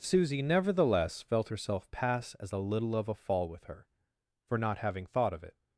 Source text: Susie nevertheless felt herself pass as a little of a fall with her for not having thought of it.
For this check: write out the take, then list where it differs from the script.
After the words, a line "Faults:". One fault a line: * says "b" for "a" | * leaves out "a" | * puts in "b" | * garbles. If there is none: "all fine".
Susie nevertheless felt herself pass as a little of a fall with her for not having thought of it.
Faults:
all fine